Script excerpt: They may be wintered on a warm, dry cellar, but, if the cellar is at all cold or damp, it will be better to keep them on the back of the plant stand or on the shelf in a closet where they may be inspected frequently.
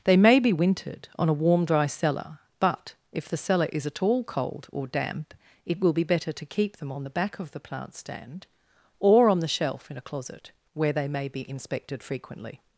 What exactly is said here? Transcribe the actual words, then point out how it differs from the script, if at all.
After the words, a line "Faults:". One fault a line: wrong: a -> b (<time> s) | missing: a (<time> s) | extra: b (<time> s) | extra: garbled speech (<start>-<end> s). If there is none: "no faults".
They may be wintered on a warm, dry cellar, but, if the cellar is at all cold or damp, it will be better to keep them on the back of the plant stand or on the shelf in a closet where they may be inspected frequently.
Faults:
no faults